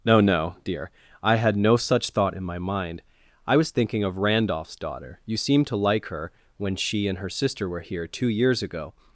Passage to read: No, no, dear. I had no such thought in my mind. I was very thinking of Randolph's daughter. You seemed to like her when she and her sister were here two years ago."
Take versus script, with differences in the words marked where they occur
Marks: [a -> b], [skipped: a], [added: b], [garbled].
No, no, dear. I had no such thought in my mind. I was [skipped: very] thinking of Randolph's daughter. You seemed to like her when she and her sister were here two years ago."